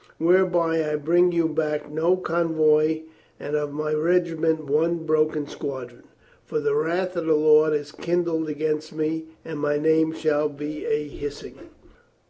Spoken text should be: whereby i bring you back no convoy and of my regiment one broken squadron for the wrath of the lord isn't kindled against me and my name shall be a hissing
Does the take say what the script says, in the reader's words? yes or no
no